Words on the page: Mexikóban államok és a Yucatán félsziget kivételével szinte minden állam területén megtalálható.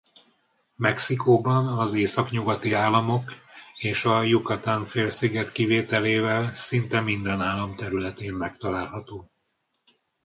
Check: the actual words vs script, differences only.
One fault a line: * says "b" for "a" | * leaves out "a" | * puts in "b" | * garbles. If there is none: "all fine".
* puts in "az északnyugati"